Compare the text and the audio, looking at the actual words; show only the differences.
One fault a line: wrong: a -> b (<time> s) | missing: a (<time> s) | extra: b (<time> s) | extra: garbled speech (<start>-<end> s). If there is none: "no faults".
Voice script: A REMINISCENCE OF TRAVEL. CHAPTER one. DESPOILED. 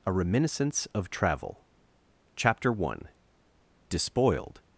no faults